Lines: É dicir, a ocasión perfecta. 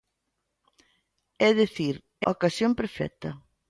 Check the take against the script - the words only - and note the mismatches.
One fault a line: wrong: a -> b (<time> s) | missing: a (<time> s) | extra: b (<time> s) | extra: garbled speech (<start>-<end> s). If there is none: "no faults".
no faults